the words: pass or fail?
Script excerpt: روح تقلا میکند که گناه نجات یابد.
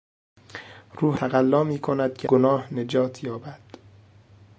pass